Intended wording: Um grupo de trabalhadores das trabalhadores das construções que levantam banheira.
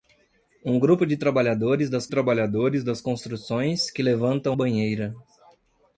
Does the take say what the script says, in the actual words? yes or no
yes